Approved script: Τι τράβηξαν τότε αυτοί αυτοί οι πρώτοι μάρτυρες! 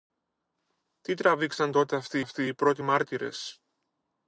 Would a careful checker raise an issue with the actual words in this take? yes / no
no